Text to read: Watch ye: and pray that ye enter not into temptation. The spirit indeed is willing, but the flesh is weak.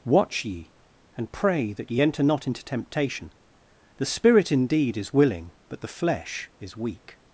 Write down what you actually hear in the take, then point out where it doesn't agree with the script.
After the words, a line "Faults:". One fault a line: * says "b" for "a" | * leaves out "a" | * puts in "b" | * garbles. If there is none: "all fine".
Watch ye: and pray that ye enter not into temptation. The spirit indeed is willing, but the flesh is weak.
Faults:
all fine